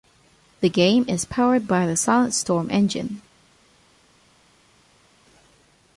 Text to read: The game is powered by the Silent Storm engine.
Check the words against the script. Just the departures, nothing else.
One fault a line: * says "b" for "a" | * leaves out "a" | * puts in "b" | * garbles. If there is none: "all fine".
all fine